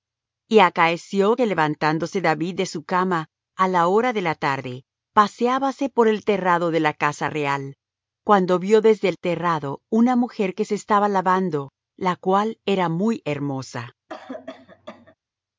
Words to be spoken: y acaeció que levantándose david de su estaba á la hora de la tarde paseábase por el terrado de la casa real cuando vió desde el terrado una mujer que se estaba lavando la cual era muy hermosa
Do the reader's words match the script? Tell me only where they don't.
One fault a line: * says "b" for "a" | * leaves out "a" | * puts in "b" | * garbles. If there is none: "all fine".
* says "cama" for "estaba"